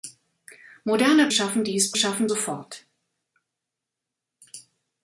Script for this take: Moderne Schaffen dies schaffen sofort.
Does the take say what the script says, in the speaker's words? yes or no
yes